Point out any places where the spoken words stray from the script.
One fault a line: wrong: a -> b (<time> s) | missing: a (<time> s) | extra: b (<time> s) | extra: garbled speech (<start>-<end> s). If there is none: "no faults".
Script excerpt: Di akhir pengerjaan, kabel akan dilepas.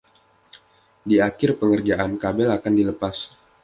no faults